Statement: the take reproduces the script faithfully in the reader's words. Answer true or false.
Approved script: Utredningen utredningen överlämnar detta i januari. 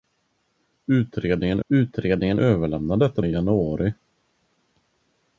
true